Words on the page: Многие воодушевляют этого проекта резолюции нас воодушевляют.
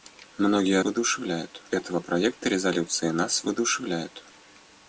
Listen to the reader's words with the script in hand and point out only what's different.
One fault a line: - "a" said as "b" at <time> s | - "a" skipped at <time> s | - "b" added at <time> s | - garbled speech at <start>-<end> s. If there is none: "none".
none